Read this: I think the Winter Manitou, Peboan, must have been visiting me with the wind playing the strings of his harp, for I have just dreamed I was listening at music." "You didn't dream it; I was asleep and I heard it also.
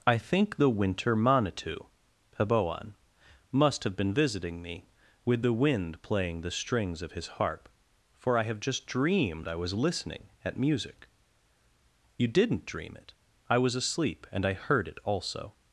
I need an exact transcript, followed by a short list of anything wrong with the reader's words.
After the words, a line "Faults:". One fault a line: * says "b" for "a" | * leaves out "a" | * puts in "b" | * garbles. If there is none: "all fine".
I think the Winter Manitou, Peboan, must have been visiting me with the wind playing the strings of his harp, for I have just dreamed I was listening at music." "You didn't dream it; I was asleep and I heard it also.
Faults:
all fine